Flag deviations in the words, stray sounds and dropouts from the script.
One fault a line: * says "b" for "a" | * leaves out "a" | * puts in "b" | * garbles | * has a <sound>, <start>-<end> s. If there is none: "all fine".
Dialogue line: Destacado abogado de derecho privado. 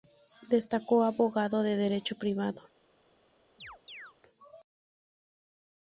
* has a chirp, 3.6-4.1 s